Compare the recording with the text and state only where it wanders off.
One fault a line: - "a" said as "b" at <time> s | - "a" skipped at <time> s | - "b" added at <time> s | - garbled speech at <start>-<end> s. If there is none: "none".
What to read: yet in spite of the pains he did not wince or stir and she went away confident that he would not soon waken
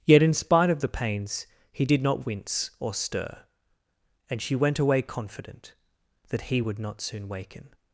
none